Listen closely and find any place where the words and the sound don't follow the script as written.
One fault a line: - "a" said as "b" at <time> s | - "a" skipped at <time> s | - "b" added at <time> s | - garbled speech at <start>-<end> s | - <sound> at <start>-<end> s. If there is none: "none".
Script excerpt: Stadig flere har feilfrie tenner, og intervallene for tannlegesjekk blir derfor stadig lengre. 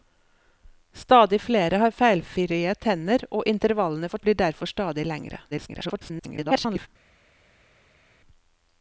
- "tannlegesjekk" skipped at 4.2 s
- garbled speech at 5.5-6.9 s